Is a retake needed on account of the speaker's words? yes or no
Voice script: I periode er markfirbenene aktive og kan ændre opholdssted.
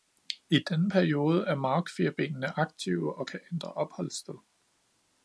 yes